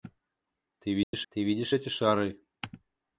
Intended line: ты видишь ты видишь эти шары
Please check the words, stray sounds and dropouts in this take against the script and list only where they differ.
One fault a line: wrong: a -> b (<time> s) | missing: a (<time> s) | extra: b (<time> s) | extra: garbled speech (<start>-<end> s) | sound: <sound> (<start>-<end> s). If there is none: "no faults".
sound: dropout (1.0-1.1 s)